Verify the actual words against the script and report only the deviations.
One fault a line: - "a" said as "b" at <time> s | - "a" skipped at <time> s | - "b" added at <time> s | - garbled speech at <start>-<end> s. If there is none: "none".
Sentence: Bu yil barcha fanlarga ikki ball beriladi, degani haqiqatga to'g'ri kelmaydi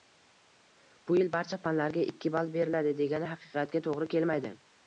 none